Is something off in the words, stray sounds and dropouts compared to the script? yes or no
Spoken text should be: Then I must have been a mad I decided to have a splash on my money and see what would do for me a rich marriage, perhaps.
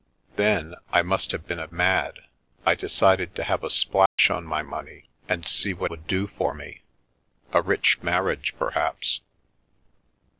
yes